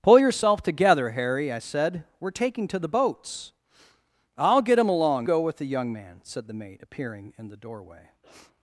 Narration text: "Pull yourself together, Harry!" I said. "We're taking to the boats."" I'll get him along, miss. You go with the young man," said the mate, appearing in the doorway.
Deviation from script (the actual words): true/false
true